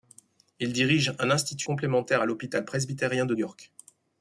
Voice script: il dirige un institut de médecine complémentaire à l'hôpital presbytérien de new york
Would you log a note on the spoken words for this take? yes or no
yes